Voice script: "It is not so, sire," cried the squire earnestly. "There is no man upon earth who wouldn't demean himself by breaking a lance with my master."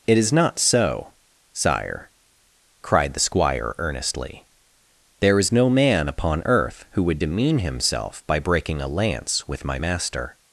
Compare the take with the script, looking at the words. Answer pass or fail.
fail